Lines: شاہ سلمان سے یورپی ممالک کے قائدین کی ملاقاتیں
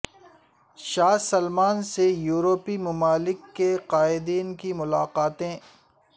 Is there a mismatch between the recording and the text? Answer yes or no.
no